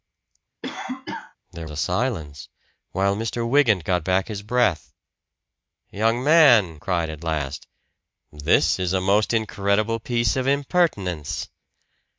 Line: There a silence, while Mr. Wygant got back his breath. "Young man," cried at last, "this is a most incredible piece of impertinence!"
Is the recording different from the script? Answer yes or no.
no